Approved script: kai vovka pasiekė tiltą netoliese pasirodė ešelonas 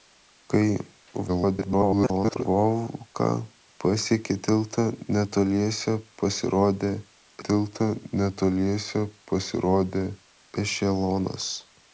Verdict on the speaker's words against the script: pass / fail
fail